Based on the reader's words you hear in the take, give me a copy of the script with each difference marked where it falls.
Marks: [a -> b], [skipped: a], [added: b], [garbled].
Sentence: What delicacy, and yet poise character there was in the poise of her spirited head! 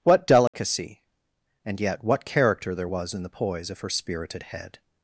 What delicacy, and yet [poise -> what] character there was in the poise of her spirited head!